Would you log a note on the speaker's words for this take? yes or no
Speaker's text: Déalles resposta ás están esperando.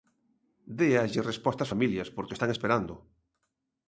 yes